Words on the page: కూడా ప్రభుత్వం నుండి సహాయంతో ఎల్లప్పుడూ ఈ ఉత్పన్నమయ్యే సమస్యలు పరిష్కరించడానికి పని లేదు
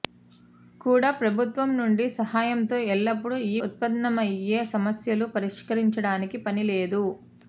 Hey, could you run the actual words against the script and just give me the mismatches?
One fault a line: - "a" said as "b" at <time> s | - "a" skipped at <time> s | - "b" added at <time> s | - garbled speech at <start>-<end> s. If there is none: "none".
none